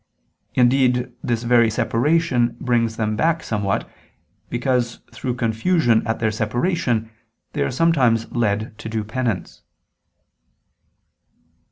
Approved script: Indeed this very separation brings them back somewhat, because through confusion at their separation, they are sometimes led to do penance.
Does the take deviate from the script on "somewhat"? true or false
false